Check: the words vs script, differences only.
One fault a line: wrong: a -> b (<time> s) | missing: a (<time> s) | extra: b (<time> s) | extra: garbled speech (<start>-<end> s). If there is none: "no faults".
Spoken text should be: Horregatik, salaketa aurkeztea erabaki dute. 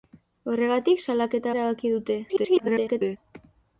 missing: aurkeztea (1.5 s)
extra: garbled speech (2.3-3.2 s)